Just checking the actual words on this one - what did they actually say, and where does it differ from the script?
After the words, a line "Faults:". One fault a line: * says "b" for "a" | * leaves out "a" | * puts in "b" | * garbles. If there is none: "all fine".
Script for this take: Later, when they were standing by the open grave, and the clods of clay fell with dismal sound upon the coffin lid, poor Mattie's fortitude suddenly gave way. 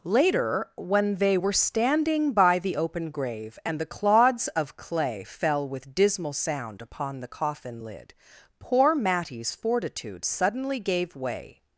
Later, when they were standing by the open grave, and the clods of clay fell with dismal sound upon the coffin lid, poor Mattie's fortitude suddenly gave way.
Faults:
all fine